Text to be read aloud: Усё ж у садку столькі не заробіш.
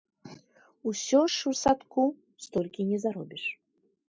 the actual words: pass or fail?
pass